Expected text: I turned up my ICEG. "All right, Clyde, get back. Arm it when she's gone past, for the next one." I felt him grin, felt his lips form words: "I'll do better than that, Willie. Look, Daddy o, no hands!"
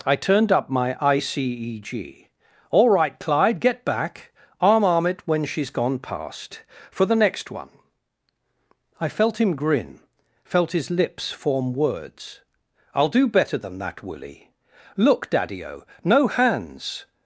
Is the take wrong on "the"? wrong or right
right